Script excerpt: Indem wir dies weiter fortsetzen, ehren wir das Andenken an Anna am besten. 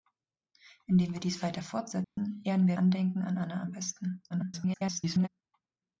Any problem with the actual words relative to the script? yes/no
yes